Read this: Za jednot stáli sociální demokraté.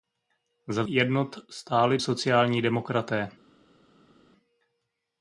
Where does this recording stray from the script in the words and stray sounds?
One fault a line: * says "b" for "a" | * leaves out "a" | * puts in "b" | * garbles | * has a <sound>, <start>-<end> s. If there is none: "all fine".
all fine